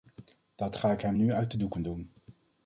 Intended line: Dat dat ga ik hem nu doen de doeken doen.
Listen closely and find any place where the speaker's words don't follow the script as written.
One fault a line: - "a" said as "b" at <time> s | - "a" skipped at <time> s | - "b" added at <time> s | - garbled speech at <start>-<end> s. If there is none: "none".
- "dat" skipped at 0.8 s
- "doen" said as "uit" at 1.3 s